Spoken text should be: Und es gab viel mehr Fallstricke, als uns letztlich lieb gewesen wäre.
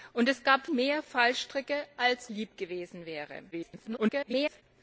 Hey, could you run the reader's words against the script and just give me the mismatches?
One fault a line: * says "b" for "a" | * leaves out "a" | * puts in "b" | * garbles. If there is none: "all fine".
* leaves out "viel"
* leaves out "uns letztlich"
* garbles